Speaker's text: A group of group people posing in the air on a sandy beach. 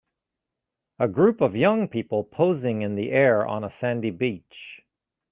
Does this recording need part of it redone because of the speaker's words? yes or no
yes